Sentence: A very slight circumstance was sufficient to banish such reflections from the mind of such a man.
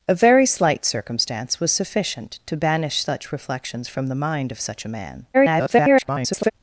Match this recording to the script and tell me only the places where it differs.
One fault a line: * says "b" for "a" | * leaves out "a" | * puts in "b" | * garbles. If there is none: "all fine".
* garbles